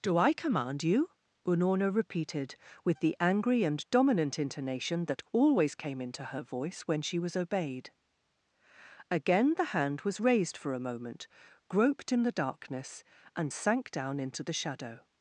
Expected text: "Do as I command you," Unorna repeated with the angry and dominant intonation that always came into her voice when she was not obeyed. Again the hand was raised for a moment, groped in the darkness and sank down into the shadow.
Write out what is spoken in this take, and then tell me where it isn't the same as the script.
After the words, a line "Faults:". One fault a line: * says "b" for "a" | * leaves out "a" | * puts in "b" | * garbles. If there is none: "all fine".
"Do I command you," Unorna repeated with the angry and dominant intonation that always came into her voice when she was obeyed. Again the hand was raised for a moment, groped in the darkness and sank down into the shadow.
Faults:
* leaves out "as"
* leaves out "not"